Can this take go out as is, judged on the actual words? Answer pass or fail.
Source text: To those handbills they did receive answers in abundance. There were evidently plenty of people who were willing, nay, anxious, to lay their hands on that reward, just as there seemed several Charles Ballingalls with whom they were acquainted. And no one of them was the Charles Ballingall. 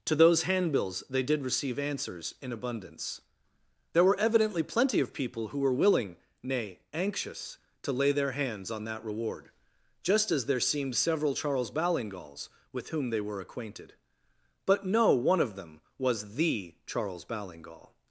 fail